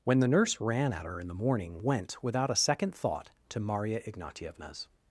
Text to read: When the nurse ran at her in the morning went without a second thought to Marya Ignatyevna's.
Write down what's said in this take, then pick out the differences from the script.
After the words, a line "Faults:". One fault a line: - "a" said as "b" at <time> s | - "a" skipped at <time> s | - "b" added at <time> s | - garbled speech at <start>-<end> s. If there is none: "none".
When the nurse ran at her in the morning went without a second thought to Marya Ignatyevna's.
Faults:
none